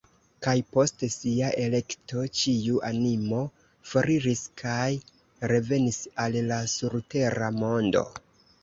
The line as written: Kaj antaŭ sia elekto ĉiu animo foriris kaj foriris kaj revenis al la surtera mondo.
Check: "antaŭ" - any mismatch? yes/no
yes